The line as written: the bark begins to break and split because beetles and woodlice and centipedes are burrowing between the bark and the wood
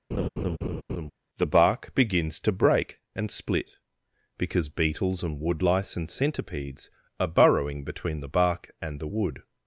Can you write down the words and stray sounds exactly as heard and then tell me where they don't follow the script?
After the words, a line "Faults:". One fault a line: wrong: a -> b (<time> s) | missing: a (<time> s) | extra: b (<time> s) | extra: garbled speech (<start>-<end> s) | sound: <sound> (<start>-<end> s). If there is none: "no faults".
the bark begins to break and split because beetles and woodlice and centipedes are burrowing between the bark and the wood
Faults:
sound: laugh (0.1-1.1 s)